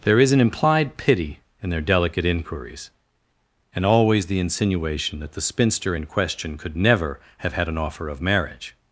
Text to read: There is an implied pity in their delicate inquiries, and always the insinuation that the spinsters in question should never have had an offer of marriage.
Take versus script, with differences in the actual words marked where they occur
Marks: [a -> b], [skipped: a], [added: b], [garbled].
There is an implied pity in their delicate inquiries, and always the insinuation that the [spinsters -> spinster] in question [should -> could] never have had an offer of marriage.